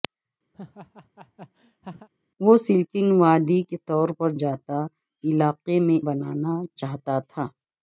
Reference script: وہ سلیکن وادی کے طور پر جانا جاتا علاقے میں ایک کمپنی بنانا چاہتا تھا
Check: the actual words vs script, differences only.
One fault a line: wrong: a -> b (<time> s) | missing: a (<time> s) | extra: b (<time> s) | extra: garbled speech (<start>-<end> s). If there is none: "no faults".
missing: جانا (4.3 s)
missing: ایک کمپنی (6.0 s)